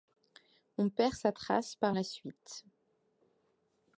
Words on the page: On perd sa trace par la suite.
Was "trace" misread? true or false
false